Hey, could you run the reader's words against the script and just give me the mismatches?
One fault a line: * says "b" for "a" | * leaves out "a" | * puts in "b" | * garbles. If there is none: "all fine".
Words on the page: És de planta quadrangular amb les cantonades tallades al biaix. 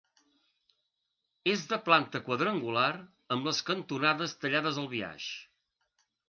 all fine